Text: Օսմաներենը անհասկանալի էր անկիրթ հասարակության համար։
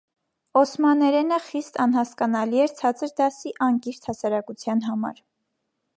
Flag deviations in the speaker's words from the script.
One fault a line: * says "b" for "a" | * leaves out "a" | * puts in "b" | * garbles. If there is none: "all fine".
* puts in "խիստ"
* puts in "ցածր դասի"